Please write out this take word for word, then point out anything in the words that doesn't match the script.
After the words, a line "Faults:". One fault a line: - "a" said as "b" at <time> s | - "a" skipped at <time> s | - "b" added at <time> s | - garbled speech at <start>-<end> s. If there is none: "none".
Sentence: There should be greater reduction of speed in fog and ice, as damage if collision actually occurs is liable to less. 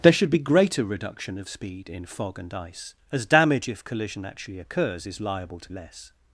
There should be greater reduction of speed in fog and ice, as damage if collision actually occurs is liable to less.
Faults:
none